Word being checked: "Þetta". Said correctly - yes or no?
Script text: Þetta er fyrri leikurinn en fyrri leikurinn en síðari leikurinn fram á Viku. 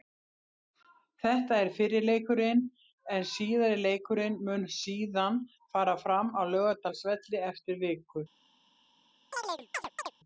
yes